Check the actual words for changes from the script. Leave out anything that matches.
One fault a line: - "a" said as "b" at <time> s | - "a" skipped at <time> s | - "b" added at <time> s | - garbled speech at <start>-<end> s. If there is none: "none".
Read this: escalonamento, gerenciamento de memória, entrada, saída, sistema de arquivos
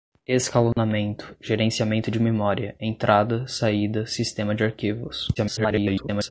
- garbled speech at 5.4-6.3 s